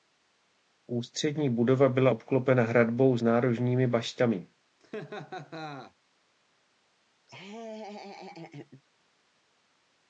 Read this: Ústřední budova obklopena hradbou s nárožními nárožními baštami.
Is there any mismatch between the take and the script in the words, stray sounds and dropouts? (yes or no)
yes